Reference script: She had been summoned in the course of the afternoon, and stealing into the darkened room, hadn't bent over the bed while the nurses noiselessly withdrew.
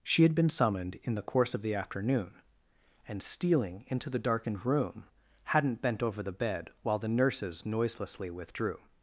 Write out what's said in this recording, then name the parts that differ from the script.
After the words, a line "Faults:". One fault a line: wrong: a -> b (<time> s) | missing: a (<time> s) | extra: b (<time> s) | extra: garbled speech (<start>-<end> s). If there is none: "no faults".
She had been summoned in the course of the afternoon, and stealing into the darkened room, hadn't bent over the bed while the nurses noiselessly withdrew.
Faults:
no faults